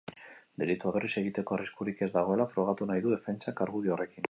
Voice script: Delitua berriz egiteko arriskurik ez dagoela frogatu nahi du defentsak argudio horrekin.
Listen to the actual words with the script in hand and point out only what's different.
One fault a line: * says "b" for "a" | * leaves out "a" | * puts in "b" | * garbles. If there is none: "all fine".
all fine